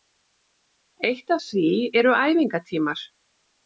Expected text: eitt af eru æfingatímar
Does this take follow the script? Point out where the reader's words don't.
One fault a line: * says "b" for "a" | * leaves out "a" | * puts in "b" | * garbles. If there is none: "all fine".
* puts in "því"